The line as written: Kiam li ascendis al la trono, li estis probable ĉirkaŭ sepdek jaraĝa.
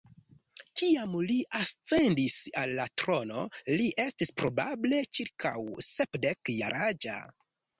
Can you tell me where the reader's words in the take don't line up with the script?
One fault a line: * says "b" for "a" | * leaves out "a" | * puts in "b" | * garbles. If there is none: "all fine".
all fine